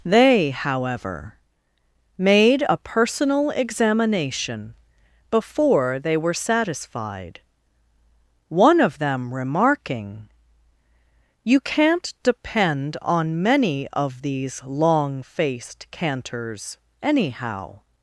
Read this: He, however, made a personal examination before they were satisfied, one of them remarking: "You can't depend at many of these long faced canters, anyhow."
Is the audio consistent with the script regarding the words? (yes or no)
no